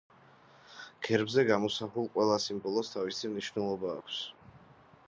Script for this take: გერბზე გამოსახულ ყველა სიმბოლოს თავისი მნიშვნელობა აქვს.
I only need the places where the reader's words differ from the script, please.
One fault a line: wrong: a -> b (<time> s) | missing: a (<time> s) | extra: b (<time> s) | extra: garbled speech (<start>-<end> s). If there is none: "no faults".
no faults